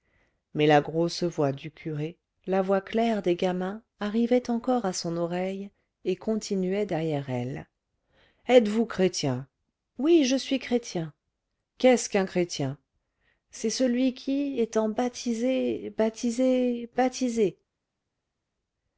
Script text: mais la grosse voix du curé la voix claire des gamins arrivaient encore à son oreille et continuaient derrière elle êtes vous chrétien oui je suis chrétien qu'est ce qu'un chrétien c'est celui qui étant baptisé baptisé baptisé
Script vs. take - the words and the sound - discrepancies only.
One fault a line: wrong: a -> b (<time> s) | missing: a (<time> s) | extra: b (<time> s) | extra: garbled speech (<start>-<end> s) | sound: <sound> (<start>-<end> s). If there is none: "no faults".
no faults